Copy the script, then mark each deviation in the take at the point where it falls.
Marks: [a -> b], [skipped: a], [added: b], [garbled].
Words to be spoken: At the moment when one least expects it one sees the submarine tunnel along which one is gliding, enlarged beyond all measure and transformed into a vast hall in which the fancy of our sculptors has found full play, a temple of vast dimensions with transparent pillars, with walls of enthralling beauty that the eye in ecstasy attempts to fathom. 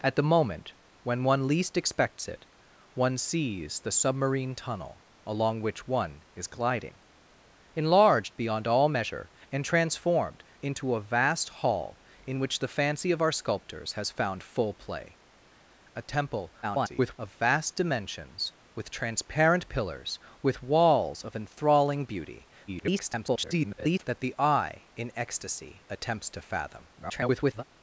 At the moment when one least expects it one sees the submarine tunnel along which one is gliding, enlarged beyond all measure and transformed into a vast hall in which the fancy of our sculptors has found full play, a temple [garbled] of vast dimensions with transparent pillars, with walls of enthralling beauty [garbled] that the eye in ecstasy attempts to fathom. [garbled]